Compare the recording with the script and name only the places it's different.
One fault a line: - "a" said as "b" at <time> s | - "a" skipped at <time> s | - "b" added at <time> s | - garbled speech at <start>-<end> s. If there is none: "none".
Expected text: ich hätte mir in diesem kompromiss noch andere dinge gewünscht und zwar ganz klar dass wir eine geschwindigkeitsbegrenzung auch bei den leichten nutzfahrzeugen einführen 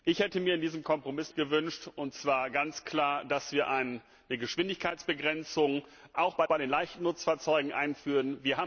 - "noch andere dinge" skipped at 1.3 s
- "bei" added at 6.4 s